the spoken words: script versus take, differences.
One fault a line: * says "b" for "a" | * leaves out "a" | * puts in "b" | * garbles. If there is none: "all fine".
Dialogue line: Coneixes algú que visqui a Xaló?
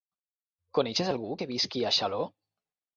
all fine